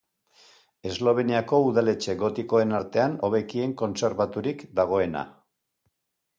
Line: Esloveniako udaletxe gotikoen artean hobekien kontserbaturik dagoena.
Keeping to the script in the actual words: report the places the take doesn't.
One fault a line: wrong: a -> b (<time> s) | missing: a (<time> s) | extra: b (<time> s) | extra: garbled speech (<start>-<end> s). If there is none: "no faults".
no faults